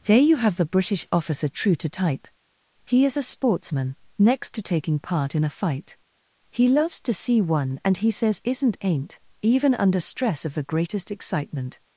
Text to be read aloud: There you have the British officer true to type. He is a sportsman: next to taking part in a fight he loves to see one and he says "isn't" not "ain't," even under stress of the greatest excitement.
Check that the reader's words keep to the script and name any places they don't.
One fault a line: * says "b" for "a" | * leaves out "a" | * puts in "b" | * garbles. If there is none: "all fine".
* leaves out "not"